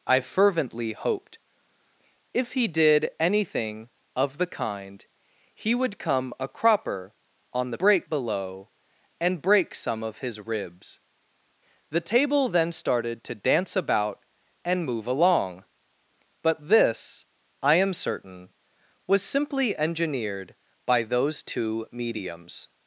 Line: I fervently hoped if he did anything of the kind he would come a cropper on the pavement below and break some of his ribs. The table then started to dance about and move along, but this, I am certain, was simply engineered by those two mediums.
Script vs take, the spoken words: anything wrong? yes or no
yes